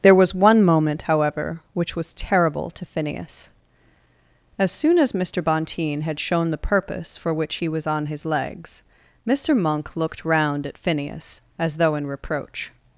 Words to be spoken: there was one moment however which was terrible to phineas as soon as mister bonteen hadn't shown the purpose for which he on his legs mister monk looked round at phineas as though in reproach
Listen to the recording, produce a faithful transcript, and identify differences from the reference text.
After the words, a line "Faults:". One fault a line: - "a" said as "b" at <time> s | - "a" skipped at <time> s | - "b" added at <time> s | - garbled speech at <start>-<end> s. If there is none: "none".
there was one moment however which was terrible to phineas as soon as mister bonteen had shown the purpose for which he was on his legs mister monk looked round at phineas as though in reproach
Faults:
- "hadn't" said as "had" at 6.0 s
- "was" added at 7.7 s